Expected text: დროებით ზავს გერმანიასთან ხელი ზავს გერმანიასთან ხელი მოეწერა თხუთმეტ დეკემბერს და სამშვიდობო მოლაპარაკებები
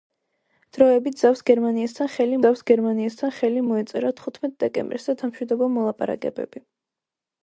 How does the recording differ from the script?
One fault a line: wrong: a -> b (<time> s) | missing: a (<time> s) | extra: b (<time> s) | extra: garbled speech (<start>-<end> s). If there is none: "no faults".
no faults